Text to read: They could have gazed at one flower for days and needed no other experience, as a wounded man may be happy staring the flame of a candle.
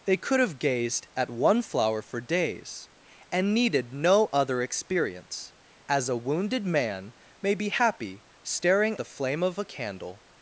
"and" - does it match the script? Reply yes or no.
yes